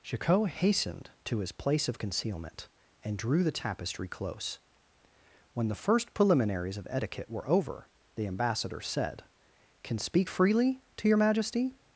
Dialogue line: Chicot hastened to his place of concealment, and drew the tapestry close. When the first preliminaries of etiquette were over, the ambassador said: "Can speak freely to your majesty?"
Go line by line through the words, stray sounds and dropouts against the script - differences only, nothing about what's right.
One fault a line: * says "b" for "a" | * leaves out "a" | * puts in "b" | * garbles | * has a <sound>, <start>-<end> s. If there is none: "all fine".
all fine